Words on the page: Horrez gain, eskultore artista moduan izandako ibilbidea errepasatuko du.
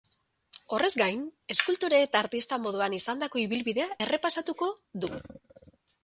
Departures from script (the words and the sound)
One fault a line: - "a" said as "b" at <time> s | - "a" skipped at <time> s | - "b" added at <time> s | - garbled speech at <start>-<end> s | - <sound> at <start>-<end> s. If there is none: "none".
- "eta" added at 2.0 s